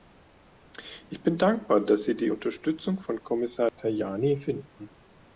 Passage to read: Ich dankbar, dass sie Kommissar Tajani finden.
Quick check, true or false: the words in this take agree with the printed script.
false